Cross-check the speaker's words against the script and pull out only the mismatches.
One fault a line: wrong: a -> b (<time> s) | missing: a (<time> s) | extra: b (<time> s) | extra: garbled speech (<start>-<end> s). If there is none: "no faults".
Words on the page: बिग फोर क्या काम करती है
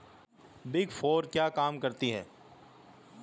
no faults